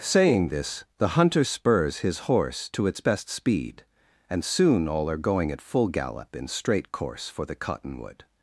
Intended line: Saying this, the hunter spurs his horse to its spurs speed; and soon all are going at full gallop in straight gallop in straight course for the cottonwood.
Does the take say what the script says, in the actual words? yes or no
no